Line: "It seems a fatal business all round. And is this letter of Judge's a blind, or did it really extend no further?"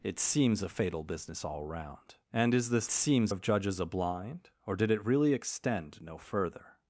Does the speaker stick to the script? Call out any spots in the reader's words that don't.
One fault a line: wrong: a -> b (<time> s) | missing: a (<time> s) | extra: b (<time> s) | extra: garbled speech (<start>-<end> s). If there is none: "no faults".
wrong: letter -> seems (2.9 s)